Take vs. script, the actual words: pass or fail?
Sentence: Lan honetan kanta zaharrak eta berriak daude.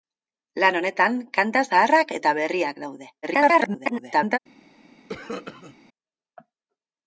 fail